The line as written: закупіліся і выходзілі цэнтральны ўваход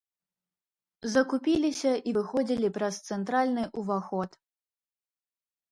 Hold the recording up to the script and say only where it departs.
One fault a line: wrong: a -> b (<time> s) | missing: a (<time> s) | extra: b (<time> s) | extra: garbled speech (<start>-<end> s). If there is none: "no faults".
extra: праз (2.8 s)